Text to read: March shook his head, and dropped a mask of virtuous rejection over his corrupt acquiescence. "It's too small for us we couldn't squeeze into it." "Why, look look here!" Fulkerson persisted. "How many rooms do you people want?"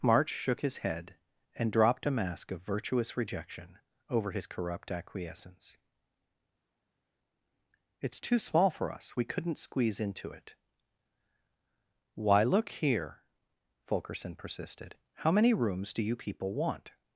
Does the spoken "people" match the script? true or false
true